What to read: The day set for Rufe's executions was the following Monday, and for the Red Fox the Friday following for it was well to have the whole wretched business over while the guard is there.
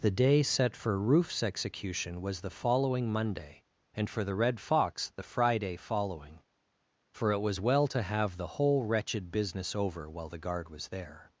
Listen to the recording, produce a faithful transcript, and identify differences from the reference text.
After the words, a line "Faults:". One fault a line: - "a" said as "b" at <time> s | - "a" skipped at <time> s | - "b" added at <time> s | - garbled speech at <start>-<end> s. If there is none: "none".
The day set for Rufe's execution was the following Monday, and for the Red Fox the Friday following for it was well to have the whole wretched business over while the guard was there.
Faults:
- "executions" said as "execution" at 1.4 s
- "is" said as "was" at 10.7 s